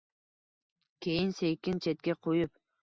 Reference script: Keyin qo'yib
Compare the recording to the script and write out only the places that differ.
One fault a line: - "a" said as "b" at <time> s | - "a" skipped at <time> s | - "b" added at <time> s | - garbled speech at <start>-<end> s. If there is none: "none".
- "sekin chetga" added at 1.4 s